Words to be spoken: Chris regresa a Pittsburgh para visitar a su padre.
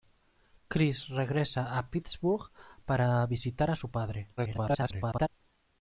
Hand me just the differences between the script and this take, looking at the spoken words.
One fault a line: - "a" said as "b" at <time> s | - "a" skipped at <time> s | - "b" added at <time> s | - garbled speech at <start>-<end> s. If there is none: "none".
- garbled speech at 4.4-5.3 s